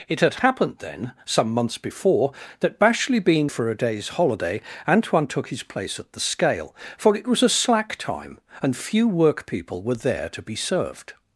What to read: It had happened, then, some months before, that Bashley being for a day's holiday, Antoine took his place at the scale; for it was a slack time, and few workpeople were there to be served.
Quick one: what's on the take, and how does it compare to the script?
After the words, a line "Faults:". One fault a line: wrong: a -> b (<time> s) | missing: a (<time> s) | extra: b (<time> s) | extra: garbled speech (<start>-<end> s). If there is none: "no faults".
It had happened, then, some months before, that Bashley being for a day's holiday, Antoine took his place at the scale; for it was a slack time, and few workpeople were there to be served.
Faults:
no faults